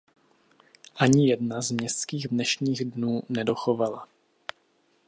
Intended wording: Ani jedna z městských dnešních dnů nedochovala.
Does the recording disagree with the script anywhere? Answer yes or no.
no